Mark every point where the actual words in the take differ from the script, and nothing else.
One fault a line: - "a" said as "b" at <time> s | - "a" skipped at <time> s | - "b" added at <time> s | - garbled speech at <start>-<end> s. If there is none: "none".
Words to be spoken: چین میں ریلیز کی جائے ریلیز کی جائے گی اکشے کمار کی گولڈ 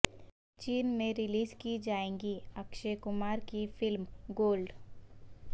- "ریلیز کی جائے" skipped at 2.1 s
- "فلم" added at 3.8 s